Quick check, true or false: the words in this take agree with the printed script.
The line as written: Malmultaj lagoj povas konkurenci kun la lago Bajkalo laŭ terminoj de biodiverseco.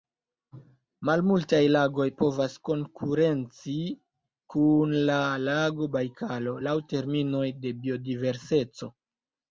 true